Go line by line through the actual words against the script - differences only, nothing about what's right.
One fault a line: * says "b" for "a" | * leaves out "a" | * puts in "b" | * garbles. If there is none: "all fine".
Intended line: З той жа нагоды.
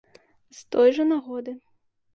all fine